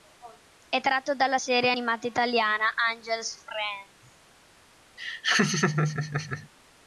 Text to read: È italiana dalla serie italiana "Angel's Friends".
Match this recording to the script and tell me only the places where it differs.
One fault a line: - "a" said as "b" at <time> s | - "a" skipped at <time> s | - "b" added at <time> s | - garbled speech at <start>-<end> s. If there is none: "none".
- "italiana" said as "tratto" at 0.8 s
- "animata" added at 1.7 s